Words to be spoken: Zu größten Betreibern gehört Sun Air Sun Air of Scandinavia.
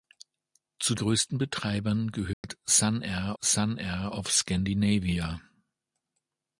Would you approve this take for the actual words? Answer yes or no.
yes